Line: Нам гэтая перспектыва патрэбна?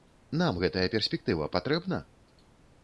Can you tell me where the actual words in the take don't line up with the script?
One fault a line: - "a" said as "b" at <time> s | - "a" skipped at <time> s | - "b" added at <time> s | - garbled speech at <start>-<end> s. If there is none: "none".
none